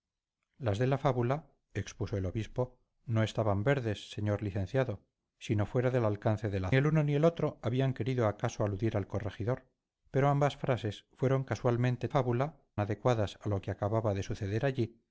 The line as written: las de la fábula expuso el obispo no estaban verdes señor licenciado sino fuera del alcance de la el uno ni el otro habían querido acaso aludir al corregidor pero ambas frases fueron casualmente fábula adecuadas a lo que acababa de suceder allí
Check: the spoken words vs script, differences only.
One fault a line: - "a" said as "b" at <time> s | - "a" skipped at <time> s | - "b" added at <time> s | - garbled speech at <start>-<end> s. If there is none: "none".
none